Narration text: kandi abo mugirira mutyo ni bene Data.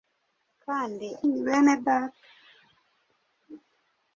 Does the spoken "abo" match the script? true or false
false